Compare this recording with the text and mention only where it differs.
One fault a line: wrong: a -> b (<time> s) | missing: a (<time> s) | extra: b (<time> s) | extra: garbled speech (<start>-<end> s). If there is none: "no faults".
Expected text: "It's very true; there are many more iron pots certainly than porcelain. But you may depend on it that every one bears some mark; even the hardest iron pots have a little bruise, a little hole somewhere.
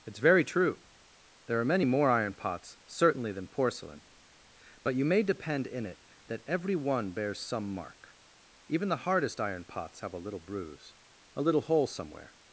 wrong: on -> in (5.7 s)